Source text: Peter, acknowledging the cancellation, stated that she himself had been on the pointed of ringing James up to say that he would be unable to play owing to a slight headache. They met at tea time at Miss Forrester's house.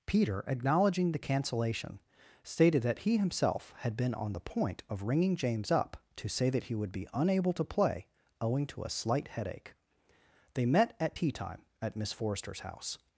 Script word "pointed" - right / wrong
wrong